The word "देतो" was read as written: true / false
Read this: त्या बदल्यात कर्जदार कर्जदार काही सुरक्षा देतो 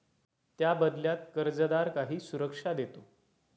true